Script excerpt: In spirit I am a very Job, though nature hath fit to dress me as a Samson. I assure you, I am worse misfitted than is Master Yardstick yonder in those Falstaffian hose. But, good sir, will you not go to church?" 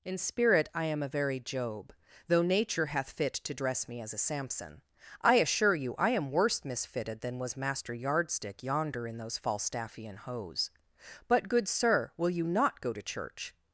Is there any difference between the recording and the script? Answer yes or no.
yes